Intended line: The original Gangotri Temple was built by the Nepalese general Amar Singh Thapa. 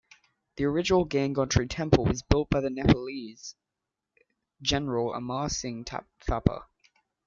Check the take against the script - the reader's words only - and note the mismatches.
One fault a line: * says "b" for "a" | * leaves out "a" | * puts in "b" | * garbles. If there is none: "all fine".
all fine